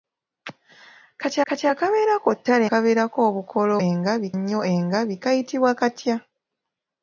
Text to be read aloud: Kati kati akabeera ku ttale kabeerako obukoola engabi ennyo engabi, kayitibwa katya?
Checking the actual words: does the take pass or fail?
pass